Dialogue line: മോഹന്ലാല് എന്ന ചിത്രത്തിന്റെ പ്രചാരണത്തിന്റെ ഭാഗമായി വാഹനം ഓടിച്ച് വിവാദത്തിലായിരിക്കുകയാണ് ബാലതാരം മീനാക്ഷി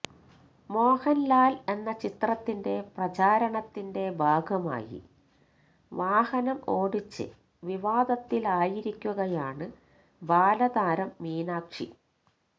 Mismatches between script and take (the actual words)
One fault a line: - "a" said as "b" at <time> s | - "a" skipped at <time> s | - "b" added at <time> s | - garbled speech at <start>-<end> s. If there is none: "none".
none